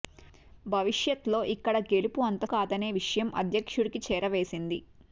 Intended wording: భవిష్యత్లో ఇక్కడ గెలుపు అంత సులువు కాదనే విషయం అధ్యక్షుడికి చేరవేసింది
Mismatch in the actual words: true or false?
true